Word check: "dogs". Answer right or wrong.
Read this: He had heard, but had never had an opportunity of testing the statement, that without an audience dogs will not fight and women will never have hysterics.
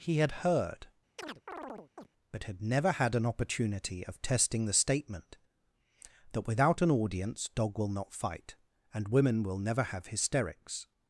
wrong